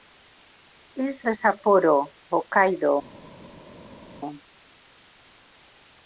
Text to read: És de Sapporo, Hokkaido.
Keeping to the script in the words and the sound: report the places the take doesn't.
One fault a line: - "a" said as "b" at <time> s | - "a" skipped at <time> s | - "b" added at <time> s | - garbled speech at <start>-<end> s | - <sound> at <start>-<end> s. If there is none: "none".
none